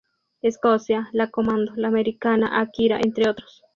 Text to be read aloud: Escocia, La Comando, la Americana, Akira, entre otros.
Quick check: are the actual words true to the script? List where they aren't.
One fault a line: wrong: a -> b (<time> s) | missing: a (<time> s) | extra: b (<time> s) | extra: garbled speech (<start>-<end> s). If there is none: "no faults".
no faults